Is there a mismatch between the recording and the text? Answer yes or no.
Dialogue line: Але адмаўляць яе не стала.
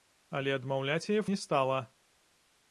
no